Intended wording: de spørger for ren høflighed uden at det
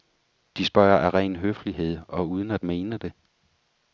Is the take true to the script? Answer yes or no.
no